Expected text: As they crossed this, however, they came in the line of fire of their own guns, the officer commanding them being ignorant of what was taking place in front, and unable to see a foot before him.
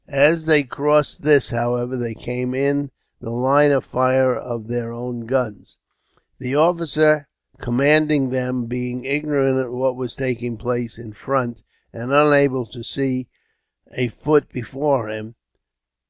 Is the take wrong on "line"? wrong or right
right